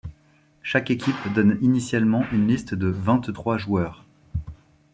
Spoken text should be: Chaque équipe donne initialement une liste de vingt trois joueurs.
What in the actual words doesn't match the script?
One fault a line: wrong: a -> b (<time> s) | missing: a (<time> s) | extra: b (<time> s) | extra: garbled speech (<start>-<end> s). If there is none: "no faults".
no faults